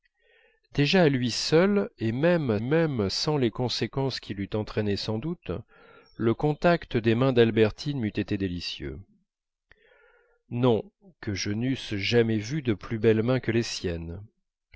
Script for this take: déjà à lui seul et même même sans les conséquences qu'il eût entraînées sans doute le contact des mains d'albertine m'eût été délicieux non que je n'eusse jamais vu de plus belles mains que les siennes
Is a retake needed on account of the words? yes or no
no